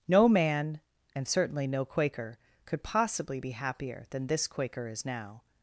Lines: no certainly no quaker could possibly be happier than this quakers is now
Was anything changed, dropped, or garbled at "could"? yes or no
no